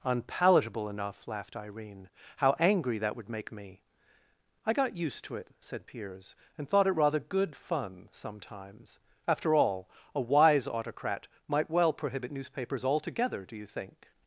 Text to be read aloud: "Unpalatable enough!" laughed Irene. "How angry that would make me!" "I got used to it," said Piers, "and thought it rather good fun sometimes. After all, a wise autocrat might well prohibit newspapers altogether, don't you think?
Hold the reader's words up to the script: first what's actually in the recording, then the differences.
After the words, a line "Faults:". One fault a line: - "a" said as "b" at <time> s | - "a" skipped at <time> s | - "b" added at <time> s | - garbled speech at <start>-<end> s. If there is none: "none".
"Unpalatable enough!" laughed Irene. "How angry that would make me!" "I got used to it," said Piers, "and thought it rather good fun sometimes. After all, a wise autocrat might well prohibit newspapers altogether, do you think?
Faults:
- "don't" said as "do" at 13.4 s